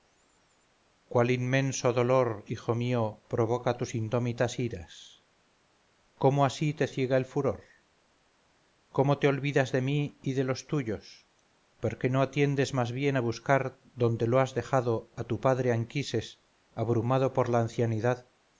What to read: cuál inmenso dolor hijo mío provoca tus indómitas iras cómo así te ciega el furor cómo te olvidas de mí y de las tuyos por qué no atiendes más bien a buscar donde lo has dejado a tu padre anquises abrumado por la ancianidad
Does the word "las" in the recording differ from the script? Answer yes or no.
yes